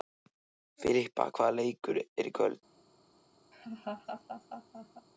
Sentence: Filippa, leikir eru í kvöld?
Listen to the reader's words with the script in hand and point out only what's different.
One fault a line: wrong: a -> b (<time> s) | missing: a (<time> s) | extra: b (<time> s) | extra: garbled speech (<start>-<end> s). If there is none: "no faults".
extra: hvaða (1.4 s)